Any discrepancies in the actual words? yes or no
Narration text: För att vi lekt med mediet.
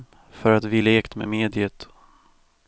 no